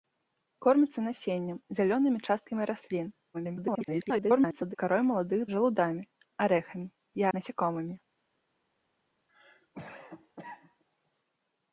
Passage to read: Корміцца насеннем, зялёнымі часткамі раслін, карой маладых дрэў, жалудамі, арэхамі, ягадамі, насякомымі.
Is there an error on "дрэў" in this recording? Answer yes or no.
yes